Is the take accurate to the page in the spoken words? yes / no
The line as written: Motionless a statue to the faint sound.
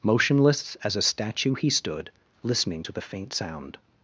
no